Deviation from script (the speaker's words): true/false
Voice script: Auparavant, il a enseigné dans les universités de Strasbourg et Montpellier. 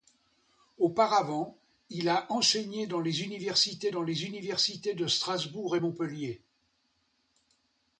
true